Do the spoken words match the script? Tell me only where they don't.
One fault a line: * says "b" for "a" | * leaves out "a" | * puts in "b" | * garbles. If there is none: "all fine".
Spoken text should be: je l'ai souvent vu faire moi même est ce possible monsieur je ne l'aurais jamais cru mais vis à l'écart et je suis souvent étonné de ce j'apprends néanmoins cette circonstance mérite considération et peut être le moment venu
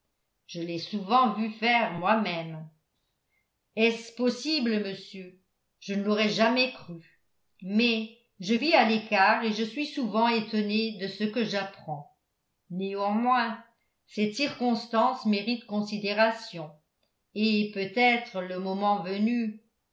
* puts in "je"
* puts in "que"